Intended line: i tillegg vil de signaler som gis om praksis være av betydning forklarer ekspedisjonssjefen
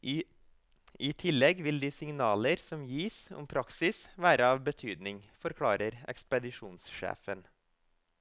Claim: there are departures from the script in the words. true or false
false